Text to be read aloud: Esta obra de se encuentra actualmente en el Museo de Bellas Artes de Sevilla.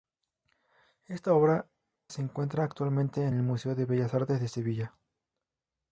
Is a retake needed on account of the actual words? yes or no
yes